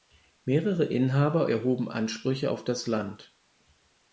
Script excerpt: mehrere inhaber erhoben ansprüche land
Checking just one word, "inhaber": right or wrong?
right